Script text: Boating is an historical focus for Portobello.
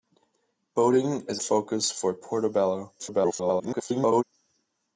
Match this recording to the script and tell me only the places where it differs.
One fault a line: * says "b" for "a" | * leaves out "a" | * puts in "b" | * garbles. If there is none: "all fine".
* leaves out "an historical"
* garbles